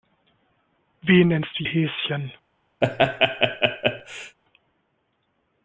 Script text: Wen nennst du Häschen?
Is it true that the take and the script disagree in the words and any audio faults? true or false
true